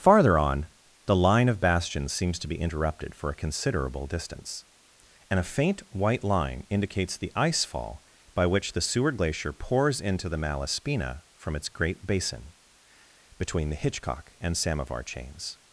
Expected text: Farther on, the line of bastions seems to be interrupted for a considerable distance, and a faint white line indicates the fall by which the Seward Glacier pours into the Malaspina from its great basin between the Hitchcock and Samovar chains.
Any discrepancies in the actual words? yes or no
yes